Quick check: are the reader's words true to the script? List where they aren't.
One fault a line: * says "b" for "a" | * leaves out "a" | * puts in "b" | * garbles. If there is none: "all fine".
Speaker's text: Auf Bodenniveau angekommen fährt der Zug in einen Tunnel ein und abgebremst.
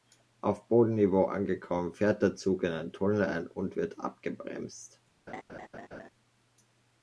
* puts in "wird"